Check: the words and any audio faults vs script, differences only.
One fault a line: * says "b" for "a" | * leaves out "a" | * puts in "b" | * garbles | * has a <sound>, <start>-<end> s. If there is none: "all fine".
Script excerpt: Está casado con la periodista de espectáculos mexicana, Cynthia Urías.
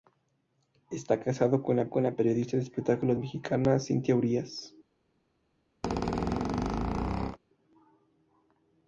* puts in "con la"
* has a squeak, 5.8-7.4 s